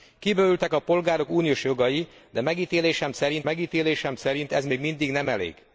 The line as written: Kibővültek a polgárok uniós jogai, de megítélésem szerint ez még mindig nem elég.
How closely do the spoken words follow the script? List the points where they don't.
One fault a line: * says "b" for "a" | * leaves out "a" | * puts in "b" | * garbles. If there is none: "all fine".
* puts in "megítélésem szerint"